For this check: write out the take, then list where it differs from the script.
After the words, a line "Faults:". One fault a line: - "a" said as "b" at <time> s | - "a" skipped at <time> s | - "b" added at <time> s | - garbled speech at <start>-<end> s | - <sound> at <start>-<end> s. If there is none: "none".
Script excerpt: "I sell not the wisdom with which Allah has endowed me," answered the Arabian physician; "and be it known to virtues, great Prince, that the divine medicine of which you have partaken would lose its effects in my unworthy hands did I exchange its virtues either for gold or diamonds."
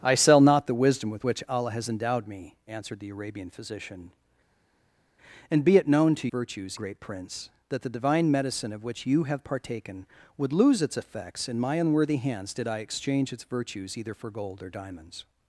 "I sell not the wisdom with which Allah has endowed me," answered the Arabian physician; "and be it known to virtues, great Prince, that the divine medicine of which you have partaken would lose its effects in my unworthy hands did I exchange its virtues either for gold or diamonds."
Faults:
none